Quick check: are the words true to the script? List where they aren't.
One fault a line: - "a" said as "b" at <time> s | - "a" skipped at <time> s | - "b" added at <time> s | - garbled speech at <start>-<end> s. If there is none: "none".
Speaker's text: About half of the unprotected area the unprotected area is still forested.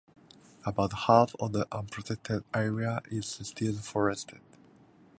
- "the unprotected area" skipped at 3.0 s